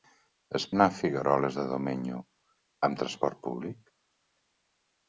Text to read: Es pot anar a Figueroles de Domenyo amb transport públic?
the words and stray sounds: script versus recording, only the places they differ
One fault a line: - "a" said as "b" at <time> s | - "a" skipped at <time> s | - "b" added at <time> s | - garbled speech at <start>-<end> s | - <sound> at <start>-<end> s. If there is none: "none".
- "pot" skipped at 0.6 s